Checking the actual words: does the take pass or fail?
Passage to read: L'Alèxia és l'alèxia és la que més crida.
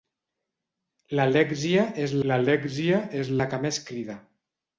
pass